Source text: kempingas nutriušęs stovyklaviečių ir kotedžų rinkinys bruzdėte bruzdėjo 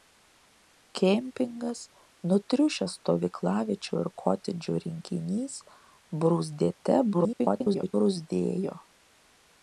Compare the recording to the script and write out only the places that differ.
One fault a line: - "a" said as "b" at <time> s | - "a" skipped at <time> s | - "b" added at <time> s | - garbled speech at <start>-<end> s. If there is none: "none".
- garbled speech at 7.1-7.9 s